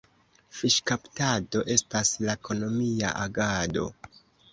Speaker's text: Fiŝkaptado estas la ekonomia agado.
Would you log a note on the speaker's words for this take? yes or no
no